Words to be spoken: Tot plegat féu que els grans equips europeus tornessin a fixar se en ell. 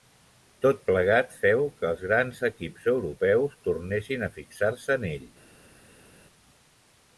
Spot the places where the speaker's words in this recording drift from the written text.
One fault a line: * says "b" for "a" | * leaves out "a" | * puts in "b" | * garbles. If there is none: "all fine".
all fine